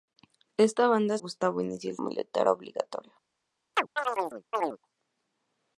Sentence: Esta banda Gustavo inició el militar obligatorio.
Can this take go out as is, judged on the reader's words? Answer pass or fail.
pass